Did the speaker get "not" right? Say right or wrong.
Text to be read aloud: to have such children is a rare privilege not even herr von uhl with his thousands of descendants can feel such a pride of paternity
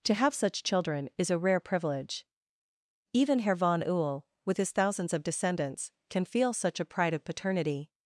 wrong